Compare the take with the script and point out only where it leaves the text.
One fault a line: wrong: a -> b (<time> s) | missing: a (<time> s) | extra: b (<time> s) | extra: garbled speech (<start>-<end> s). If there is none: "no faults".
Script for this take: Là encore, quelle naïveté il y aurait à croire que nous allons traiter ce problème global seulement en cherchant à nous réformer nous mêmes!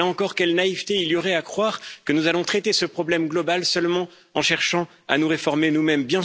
no faults